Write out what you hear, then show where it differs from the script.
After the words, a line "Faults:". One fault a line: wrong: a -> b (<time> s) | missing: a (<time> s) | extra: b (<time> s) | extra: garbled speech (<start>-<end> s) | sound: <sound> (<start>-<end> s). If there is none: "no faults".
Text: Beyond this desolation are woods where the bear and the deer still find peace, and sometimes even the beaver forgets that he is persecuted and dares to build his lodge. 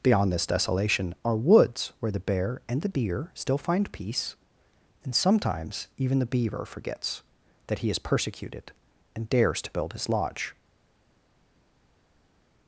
Beyond this desolation are woods where the bear and the deer still find peace, and sometimes even the beaver forgets that he is persecuted and dares to build his lodge.
Faults:
no faults